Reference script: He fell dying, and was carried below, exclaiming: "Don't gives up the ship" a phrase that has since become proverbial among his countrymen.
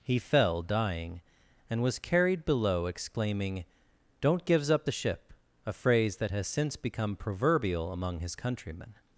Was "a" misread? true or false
false